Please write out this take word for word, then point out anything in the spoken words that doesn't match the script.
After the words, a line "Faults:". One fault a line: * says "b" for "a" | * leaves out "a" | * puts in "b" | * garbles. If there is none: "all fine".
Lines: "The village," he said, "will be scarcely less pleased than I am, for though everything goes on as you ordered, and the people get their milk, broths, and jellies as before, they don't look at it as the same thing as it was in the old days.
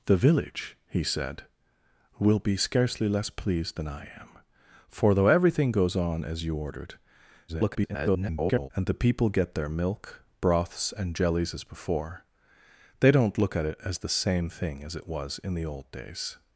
"The village," he said, "will be scarcely less pleased than I am, for though everything goes on as you ordered, [garbled] and the people get their milk, broths, and jellies as before, they don't look at it as the same thing as it was in the old days.
Faults:
* garbles